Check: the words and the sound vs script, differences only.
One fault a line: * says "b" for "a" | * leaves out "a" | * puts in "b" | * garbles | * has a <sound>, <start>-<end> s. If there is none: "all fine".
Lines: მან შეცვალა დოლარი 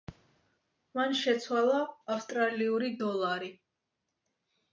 * puts in "ავსტრალიური"